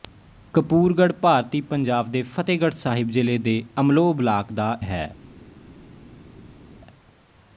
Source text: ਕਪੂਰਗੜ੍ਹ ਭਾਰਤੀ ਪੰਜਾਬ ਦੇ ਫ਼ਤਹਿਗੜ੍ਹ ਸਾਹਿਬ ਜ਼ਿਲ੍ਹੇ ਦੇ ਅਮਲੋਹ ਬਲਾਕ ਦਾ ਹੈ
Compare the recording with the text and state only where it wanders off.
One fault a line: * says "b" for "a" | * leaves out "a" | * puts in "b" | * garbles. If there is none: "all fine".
all fine